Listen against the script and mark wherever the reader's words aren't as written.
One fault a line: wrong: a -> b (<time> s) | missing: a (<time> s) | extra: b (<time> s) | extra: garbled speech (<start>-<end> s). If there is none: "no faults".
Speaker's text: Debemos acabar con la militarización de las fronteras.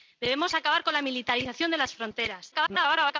extra: garbled speech (2.5-3.2 s)